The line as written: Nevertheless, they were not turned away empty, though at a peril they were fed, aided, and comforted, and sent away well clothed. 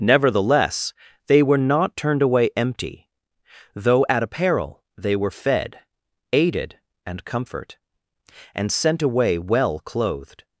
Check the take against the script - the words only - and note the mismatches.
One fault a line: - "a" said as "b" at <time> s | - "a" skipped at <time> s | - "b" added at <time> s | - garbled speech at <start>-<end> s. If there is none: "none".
- "comforted" said as "comfort" at 7.2 s